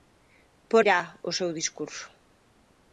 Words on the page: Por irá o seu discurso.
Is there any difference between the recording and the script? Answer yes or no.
no